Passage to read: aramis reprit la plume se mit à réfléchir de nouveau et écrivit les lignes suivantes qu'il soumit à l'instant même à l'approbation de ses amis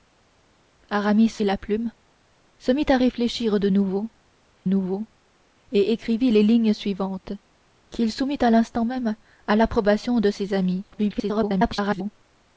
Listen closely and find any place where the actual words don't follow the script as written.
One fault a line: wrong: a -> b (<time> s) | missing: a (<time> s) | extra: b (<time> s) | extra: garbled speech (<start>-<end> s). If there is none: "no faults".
missing: reprit (1.3 s)
extra: nouveau (4.6 s)
extra: garbled speech (10.9-12.1 s)